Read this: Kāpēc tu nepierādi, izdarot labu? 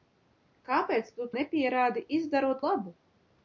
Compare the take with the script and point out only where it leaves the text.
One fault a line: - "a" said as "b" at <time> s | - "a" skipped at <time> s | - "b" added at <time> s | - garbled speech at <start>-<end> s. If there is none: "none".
none